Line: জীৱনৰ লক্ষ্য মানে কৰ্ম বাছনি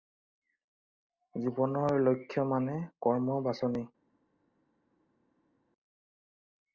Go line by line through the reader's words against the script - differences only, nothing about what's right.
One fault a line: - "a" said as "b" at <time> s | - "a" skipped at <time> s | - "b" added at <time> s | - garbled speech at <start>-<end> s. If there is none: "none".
none